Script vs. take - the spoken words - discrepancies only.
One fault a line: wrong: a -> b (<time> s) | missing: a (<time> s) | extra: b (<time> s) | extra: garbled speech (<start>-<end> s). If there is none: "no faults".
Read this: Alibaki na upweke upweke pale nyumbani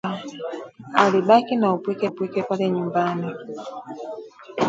no faults